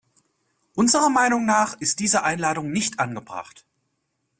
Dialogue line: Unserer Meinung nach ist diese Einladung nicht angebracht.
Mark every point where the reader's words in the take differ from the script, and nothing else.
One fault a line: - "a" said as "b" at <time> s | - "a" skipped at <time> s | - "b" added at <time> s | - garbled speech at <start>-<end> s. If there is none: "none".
none